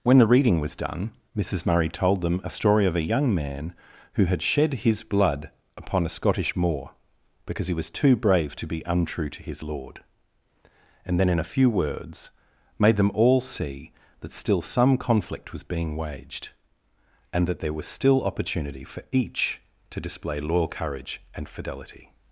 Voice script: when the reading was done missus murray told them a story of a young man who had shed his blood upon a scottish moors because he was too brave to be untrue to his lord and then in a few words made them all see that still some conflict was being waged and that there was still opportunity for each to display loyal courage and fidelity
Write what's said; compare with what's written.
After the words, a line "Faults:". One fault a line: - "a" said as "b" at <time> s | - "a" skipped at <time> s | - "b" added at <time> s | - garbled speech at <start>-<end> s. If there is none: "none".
when the reading was done missus murray told them a story of a young man who had shed his blood upon a scottish moor because he was too brave to be untrue to his lord and then in a few words made them all see that still some conflict was being waged and that there was still opportunity for each to display loyal courage and fidelity
Faults:
- "moors" said as "moor" at 6.6 s